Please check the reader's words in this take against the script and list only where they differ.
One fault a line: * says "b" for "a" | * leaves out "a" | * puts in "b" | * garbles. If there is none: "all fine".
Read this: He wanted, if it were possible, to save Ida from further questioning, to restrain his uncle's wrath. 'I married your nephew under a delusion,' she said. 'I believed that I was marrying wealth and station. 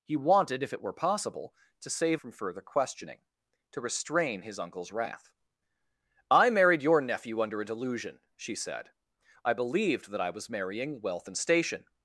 * leaves out "Ida"